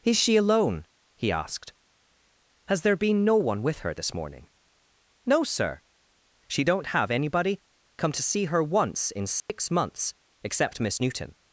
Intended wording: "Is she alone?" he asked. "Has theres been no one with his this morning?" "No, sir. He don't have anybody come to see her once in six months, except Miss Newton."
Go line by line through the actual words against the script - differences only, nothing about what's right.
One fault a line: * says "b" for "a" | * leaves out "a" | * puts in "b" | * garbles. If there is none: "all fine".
* says "there" for "theres"
* says "her" for "his"
* says "She" for "He"